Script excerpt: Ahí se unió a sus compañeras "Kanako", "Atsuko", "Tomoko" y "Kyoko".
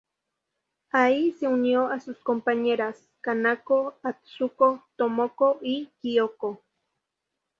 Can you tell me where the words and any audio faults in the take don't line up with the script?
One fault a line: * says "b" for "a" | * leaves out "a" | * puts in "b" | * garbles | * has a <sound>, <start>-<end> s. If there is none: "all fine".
all fine